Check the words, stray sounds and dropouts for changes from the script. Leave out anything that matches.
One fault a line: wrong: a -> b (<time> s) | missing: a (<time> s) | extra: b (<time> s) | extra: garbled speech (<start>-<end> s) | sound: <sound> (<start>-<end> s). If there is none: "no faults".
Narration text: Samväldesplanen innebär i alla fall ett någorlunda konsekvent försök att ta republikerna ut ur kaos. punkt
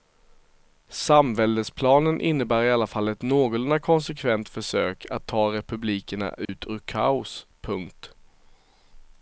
sound: dropout (6.5-6.5 s)